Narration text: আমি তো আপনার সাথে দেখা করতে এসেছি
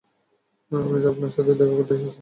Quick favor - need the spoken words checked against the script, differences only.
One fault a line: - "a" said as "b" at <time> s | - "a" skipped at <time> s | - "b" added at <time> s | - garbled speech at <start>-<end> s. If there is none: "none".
none